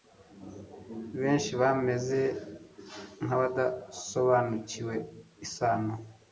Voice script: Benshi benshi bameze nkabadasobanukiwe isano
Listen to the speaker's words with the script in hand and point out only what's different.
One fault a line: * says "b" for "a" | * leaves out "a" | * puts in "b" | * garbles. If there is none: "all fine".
* leaves out "benshi"